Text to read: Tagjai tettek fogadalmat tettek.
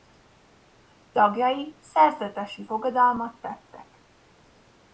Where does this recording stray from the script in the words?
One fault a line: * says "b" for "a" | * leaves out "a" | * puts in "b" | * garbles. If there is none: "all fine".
* says "szerzetesi" for "tettek"